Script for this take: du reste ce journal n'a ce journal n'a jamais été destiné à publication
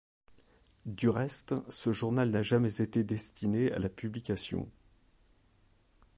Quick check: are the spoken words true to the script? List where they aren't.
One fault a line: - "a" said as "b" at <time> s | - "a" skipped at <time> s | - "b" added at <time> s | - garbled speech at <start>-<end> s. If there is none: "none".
- "ce journal n'a" skipped at 2.4 s
- "la" added at 3.8 s